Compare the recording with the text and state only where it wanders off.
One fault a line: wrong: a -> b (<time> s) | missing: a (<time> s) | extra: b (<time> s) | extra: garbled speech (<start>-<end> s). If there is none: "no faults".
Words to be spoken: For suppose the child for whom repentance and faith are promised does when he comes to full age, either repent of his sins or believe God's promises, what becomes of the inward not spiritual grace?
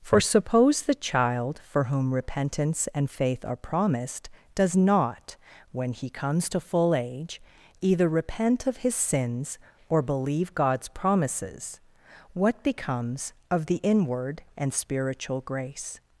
extra: not (4.8 s)
wrong: not -> and (14.6 s)